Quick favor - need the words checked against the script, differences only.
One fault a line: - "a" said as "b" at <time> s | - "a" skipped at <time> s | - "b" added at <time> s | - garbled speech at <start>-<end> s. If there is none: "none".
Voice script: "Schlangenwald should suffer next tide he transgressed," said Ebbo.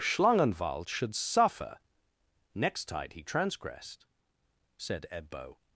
none